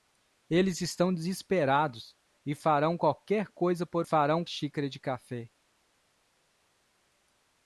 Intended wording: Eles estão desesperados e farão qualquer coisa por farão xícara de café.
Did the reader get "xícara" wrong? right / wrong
right